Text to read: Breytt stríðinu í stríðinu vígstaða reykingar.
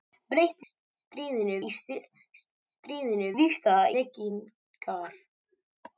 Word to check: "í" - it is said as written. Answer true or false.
true